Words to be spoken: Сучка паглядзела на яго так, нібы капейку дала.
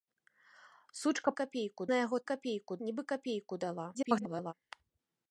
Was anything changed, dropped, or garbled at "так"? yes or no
yes